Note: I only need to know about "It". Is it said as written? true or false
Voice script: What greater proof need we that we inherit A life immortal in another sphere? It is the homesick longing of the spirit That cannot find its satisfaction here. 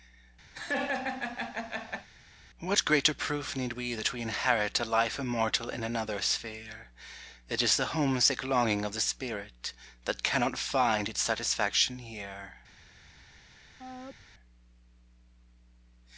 true